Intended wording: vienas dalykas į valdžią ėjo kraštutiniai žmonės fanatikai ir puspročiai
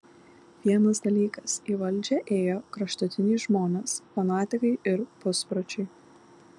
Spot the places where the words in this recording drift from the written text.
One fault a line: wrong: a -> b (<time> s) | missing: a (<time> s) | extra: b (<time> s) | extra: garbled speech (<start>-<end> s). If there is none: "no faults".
no faults